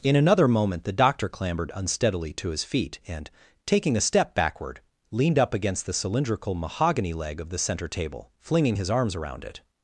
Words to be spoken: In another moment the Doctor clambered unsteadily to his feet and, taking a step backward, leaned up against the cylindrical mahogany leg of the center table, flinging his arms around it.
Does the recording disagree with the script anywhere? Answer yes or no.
no